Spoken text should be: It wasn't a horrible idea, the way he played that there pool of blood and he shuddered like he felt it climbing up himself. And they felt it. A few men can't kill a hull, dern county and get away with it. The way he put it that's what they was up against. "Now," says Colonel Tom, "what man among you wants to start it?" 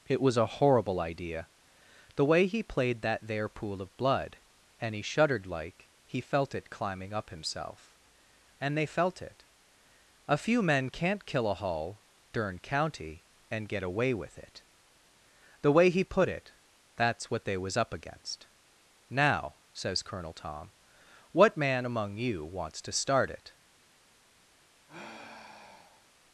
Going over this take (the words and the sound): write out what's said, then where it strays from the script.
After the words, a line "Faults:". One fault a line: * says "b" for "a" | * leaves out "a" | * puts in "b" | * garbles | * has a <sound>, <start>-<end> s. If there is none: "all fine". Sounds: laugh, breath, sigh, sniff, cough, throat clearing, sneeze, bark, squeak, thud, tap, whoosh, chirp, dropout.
It was a horrible idea, the way he played that there pool of blood and he shuddered like he felt it climbing up himself. And they felt it. A few men can't kill a hull, dern county and get away with it. The way he put it that's what they was up against. "Now," says Colonel Tom, "what man among you wants to start it?"
Faults:
* says "was" for "wasn't"
* has a sigh, 24.9-26.1 s